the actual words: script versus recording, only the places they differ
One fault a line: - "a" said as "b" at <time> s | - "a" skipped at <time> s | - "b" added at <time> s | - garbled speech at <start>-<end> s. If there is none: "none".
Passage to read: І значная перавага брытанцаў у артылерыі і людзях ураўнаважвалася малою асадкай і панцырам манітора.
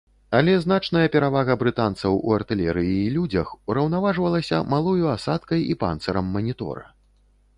- "І" said as "Але" at 0.4 s